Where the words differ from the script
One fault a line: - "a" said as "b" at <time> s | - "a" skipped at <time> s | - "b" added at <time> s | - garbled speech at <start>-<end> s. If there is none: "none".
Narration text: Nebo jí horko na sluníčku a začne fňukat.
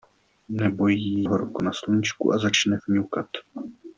none